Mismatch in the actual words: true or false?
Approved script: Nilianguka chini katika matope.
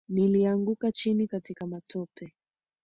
false